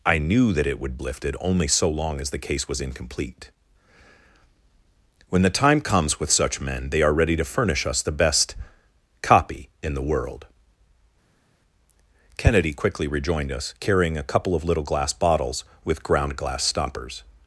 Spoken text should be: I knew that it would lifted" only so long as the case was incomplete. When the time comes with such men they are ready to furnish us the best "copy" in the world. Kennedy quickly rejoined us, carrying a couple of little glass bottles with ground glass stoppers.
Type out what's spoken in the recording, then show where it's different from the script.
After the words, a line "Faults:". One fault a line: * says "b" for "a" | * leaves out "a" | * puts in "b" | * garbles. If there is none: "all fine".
I knew that it would lifted" only so long as the case was incomplete. When the time comes with such men they are ready to furnish us the best "copy" in the world. Kennedy quickly rejoined us, carrying a couple of little glass bottles with ground glass stoppers.
Faults:
all fine